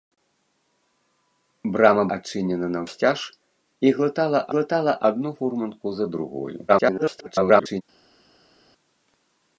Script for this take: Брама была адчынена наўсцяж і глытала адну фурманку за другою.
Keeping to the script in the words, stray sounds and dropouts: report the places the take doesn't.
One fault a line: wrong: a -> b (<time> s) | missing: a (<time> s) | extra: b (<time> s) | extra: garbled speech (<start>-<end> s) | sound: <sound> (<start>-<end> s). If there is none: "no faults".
missing: была (2.0 s)
extra: глытала (4.5 s)
extra: garbled speech (6.7-7.8 s)